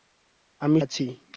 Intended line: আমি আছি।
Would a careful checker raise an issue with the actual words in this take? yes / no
no